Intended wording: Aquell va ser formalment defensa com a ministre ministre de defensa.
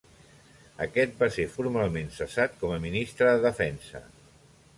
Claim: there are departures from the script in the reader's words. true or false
true